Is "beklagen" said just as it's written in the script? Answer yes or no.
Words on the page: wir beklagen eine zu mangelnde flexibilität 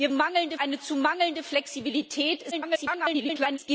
no